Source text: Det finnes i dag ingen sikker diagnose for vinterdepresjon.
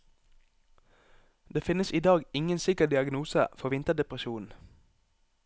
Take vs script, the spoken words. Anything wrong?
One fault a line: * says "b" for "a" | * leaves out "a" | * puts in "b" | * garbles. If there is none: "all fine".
all fine